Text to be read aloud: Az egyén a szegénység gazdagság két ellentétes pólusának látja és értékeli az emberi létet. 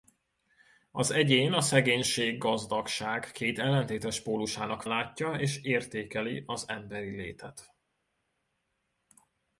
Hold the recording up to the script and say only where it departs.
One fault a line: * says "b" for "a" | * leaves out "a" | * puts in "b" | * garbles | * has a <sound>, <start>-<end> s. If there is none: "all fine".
all fine